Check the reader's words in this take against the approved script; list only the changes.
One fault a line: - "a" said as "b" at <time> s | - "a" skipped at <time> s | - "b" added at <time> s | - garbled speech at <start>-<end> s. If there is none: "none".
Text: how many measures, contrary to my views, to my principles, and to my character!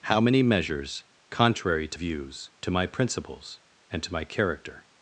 - "my" skipped at 2.0 s